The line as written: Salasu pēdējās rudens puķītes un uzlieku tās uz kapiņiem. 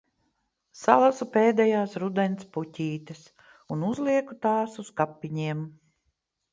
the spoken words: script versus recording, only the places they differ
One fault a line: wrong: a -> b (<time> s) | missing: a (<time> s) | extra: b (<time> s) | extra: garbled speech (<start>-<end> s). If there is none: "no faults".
no faults